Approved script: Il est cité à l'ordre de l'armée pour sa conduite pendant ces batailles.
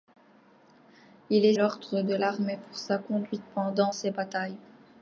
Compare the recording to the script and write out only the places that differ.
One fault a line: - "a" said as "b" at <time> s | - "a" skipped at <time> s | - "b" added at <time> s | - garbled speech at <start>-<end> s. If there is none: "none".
- "cité à" skipped at 1.5 s